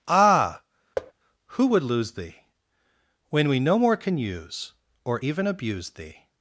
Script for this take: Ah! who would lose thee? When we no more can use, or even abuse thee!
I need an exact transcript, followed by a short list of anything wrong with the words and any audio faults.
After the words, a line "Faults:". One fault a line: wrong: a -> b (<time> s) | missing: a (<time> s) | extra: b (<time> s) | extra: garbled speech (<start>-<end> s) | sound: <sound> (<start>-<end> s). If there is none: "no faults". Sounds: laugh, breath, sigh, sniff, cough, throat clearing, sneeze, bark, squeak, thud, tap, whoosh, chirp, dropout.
Ah! who would lose thee? When we no more can use, or even abuse thee!
Faults:
sound: thud (1.0-1.1 s)